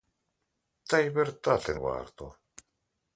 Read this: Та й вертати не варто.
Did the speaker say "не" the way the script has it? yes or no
no